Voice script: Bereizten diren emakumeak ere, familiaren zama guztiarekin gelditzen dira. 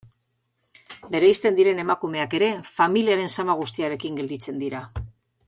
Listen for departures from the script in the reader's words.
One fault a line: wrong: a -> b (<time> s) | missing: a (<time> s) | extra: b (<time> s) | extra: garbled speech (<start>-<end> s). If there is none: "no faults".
no faults